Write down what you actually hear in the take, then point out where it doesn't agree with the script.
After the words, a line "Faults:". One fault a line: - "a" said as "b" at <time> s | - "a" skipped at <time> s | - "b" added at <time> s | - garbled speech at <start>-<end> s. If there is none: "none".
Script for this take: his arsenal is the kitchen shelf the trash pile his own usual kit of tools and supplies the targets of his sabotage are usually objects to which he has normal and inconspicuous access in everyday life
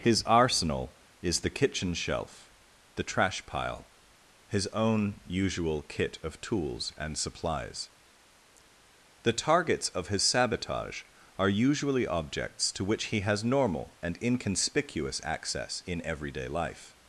his arsenal is the kitchen shelf the trash pile his own usual kit of tools and supplies the targets of his sabotage are usually objects to which he has normal and inconspicuous access in everyday life
Faults:
none